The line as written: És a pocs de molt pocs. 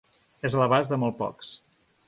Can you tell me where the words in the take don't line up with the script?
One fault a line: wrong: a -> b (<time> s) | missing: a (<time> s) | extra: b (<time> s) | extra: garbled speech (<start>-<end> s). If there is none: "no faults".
wrong: pocs -> l'abast (0.6 s)